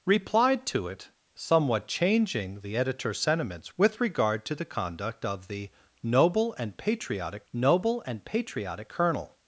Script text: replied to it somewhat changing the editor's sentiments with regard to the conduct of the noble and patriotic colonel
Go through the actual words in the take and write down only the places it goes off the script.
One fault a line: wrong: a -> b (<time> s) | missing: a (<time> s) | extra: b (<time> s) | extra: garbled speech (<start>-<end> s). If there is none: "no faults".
extra: noble and patriotic (7.5 s)